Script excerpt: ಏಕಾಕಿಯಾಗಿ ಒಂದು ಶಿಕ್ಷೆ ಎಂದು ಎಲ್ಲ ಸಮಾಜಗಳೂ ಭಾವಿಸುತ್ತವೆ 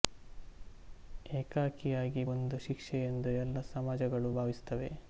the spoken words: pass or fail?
pass